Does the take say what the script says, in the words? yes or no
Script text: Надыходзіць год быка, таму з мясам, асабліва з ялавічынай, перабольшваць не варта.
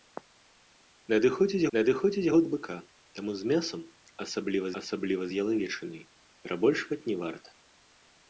no